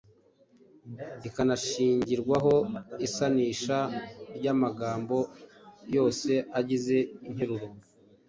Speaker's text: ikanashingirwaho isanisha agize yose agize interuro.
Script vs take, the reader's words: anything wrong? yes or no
yes